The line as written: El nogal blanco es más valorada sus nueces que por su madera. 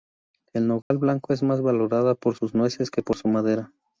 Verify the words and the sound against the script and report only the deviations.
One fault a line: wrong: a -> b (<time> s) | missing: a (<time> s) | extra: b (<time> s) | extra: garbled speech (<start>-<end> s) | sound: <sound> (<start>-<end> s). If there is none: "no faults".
sound: dropout (0.8-0.9 s)
extra: por (2.1 s)